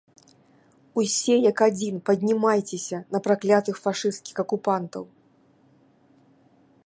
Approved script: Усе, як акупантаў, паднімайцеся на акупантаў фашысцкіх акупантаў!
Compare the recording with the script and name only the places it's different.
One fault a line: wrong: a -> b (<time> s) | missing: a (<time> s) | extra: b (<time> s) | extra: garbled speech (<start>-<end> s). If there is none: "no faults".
wrong: акупантаў -> адзін (1.6 s)
wrong: акупантаў -> праклятых (3.3 s)